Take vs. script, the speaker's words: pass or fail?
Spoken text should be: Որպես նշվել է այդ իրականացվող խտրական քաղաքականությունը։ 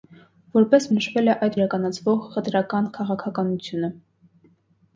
pass